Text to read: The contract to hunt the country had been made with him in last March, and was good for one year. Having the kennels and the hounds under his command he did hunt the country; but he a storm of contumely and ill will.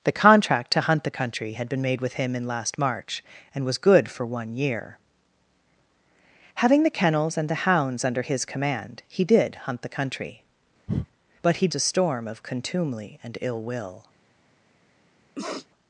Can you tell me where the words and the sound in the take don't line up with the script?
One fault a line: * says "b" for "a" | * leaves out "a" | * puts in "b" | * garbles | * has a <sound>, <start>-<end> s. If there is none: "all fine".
* has a breath, 10.9-11.1 s
* has a sniff, 15.4-15.7 s